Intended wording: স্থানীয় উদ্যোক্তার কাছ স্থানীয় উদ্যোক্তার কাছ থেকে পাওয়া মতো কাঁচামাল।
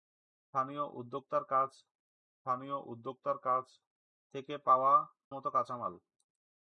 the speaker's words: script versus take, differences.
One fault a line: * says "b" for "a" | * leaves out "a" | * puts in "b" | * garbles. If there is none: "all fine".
all fine